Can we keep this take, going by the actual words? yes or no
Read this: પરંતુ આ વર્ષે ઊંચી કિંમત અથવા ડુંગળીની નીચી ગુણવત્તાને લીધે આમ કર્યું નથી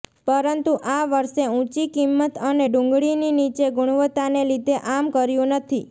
no